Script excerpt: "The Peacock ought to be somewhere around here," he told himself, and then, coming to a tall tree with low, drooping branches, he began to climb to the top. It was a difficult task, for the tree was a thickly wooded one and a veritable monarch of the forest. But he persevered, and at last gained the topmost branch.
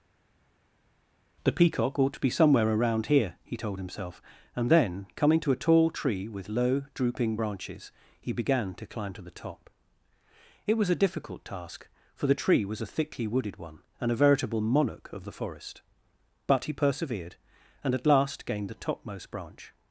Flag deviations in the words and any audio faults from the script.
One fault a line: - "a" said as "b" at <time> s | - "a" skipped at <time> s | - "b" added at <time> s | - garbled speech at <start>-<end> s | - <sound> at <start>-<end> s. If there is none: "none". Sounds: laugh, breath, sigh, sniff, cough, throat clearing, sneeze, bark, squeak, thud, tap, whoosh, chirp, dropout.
none